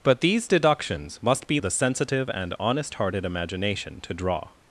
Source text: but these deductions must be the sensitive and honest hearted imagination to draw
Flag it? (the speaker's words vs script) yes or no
no